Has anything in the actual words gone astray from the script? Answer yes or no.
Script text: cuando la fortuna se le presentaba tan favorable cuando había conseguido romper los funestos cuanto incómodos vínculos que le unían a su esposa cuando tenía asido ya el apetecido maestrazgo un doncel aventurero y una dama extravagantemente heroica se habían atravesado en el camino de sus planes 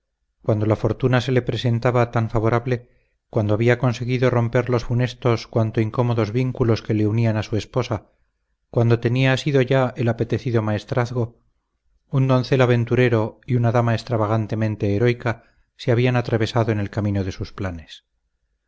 no